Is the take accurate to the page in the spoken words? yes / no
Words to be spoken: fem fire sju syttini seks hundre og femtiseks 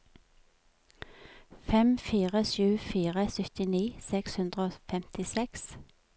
no